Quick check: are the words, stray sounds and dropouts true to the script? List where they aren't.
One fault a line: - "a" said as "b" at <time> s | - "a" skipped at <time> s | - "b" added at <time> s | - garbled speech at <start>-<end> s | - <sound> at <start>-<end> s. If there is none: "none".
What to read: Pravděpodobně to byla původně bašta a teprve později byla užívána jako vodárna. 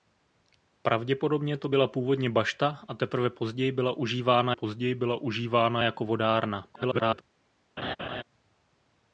- "později byla užívána" added at 4.5 s
- garbled speech at 6.7-7.2 s
- laugh at 7.8-8.2 s